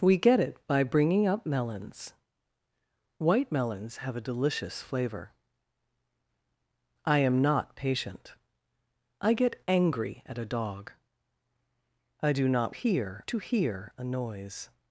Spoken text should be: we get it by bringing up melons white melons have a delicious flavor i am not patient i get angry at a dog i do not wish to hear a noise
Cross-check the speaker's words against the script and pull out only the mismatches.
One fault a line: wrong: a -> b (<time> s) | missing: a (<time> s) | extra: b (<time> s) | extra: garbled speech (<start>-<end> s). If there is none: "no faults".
wrong: wish -> hear (12.7 s)